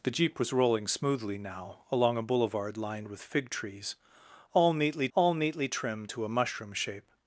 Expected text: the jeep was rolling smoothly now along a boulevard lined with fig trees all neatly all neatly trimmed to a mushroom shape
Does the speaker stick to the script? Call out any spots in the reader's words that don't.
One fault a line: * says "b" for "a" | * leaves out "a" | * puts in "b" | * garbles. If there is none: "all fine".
all fine